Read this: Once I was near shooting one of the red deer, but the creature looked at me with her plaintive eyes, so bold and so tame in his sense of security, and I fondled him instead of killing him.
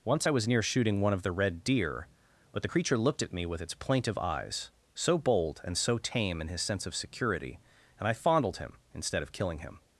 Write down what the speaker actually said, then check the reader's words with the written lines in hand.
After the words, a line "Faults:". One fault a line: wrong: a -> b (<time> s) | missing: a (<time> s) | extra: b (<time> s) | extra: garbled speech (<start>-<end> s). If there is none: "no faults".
Once I was near shooting one of the red deer, but the creature looked at me with its plaintive eyes, so bold and so tame in his sense of security, and I fondled him instead of killing him.
Faults:
wrong: her -> its (3.6 s)